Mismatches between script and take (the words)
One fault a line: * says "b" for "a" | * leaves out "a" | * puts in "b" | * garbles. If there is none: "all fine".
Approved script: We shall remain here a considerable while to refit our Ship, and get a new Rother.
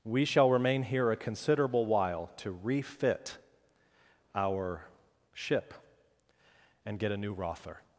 all fine